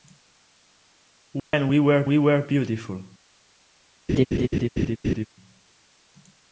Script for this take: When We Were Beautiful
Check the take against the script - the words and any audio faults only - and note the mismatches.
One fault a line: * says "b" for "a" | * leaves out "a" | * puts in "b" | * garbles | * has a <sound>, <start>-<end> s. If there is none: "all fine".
* has a dropout, 1.4-1.5 s
* puts in "We Were"
* has a laugh, 4.1-5.3 s